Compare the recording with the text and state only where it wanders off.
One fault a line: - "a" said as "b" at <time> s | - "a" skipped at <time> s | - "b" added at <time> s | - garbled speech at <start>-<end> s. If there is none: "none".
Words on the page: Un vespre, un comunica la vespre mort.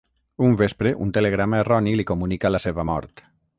- "telegrama erroni li" added at 1.2 s
- "vespre" said as "seva" at 2.7 s